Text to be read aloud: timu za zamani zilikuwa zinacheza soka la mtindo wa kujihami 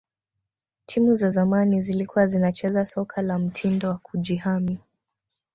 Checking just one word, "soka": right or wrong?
right